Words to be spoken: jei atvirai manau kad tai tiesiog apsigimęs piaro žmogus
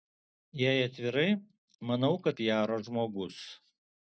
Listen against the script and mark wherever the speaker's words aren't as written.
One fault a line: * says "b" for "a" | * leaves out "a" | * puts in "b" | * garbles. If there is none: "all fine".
* leaves out "tai tiesiog apsigimęs"